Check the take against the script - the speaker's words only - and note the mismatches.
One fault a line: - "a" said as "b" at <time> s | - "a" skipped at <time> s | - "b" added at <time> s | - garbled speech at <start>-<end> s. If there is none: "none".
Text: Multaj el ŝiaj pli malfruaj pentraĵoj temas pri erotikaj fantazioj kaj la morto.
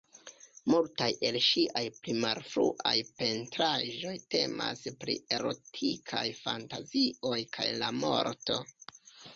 none